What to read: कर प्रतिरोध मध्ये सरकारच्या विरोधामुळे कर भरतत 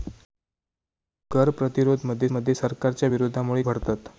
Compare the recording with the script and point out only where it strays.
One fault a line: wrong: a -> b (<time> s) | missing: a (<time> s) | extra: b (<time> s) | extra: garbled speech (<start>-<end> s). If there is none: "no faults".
extra: मध्ये (2.3 s)
missing: कर (3.6 s)